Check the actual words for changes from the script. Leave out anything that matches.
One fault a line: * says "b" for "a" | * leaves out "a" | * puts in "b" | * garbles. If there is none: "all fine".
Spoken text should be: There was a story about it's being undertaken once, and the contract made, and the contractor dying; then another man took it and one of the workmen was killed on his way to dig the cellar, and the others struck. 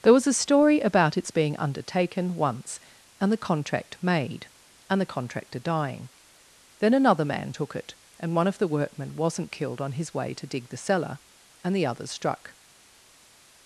* says "wasn't" for "was"